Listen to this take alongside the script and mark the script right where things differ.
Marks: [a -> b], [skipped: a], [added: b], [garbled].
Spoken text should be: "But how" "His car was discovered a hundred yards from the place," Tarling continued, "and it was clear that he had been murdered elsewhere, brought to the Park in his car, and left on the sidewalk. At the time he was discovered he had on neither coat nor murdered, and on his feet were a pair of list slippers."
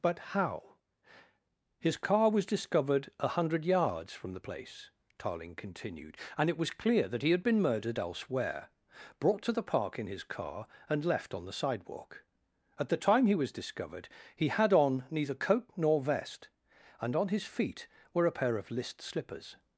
"But how" "His car was discovered a hundred yards from the place," Tarling continued, "and it was clear that he had been murdered elsewhere, brought to the Park in his car, and left on the sidewalk. At the time he was discovered he had on neither coat nor [murdered, -> vest] and on his feet were a pair of list slippers."